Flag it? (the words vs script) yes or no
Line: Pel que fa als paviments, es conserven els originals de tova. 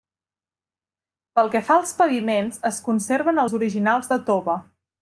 no